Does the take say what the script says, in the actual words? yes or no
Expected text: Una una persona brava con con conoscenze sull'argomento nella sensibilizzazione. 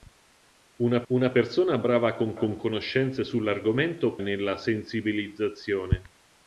yes